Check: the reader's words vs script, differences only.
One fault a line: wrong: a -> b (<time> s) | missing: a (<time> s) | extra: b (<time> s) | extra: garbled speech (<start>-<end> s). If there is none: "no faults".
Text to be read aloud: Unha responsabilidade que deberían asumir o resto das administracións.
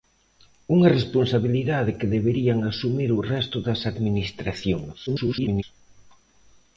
extra: garbled speech (5.1-5.6 s)